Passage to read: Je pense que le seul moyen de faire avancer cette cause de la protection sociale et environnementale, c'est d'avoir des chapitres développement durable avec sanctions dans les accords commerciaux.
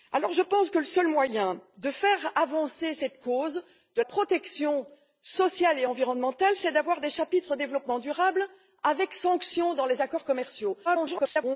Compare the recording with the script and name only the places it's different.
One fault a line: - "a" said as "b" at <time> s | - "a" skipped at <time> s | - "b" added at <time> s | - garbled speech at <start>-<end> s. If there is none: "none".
- "la" skipped at 4.0 s
- garbled speech at 10.8-11.6 s